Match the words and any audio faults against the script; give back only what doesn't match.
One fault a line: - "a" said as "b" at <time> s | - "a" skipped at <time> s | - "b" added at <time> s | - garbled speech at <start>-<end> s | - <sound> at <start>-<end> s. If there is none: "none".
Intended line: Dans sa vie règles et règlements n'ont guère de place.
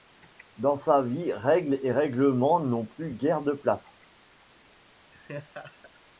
- "plus" added at 2.8 s
- laugh at 5.1-6.0 s